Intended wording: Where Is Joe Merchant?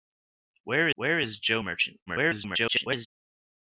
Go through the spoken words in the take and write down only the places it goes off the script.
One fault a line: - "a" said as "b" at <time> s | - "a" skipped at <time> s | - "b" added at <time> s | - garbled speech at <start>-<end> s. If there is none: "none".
- "where" added at 0.9 s
- garbled speech at 2.1-3.1 s